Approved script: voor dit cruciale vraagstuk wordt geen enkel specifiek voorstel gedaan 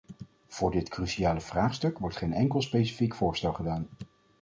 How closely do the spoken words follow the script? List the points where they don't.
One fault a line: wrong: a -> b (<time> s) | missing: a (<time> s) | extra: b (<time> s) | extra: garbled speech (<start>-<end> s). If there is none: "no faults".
no faults